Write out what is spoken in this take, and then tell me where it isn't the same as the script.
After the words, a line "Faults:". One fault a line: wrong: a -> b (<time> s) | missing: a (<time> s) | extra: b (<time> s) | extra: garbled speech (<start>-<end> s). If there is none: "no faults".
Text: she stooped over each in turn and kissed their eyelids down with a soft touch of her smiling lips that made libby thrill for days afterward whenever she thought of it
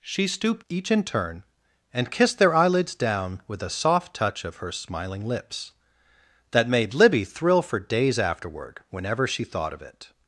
she stooped each in turn and kissed their eyelids down with a soft touch of her smiling lips that made libby thrill for days afterward whenever she thought of it
Faults:
missing: over (0.7 s)